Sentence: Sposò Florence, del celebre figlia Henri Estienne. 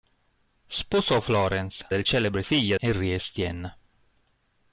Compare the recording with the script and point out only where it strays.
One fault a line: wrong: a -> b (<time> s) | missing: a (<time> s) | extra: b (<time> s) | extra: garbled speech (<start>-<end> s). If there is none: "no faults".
no faults